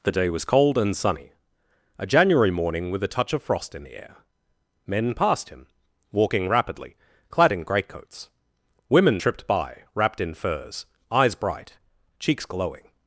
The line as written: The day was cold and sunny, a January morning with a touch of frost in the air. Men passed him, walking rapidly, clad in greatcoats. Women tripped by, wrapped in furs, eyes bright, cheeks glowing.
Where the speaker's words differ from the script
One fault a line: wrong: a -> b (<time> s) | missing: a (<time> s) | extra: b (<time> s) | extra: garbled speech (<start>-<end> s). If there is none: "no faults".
no faults